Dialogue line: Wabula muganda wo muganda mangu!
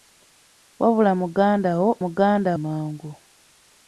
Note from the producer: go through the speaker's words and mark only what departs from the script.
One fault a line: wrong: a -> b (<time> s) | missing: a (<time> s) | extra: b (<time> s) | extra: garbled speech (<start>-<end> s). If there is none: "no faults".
no faults